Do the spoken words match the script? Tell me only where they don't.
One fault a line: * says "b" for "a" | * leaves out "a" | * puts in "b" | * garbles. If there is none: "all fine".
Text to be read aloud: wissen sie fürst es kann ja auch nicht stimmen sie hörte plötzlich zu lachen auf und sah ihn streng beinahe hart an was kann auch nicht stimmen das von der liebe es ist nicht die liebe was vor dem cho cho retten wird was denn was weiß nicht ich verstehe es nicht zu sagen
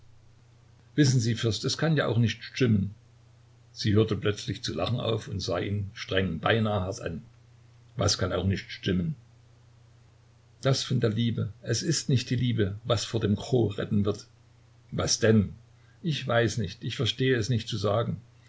* leaves out "cho"
* says "ich" for "was"